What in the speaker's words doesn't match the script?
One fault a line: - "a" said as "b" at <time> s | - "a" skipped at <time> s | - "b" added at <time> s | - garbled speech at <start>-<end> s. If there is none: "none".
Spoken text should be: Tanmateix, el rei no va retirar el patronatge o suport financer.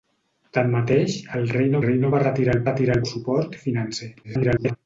- "rei no" added at 1.8 s
- "patronatge" said as "retirar" at 2.7 s
- garbled speech at 4.2-4.8 s